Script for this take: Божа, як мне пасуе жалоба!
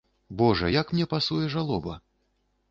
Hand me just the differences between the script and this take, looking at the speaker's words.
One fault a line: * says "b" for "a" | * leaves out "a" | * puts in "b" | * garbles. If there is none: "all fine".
all fine